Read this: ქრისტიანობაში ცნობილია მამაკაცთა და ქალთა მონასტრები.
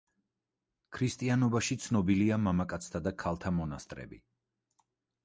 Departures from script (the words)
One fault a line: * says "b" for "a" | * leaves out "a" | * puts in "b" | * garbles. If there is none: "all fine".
all fine